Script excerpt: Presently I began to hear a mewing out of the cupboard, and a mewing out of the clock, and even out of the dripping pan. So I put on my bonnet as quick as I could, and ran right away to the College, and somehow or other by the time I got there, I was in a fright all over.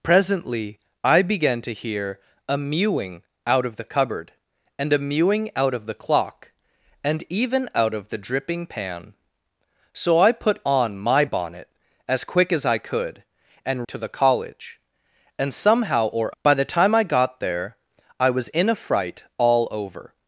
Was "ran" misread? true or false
true